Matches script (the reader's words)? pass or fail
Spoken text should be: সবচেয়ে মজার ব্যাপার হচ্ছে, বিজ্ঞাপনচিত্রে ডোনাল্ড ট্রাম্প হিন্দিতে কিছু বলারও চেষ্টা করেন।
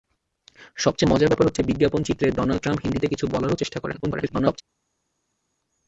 fail